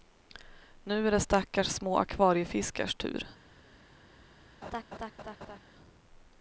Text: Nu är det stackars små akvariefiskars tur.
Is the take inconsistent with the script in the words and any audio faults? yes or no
yes